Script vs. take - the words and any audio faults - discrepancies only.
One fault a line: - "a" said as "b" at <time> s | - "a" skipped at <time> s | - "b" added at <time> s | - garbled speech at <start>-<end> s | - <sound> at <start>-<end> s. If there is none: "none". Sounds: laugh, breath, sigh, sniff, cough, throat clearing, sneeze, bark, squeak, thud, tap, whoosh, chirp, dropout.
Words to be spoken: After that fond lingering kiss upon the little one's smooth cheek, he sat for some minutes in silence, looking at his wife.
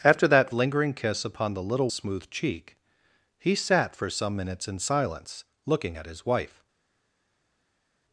- "fond" skipped at 0.5 s
- "one's" skipped at 1.9 s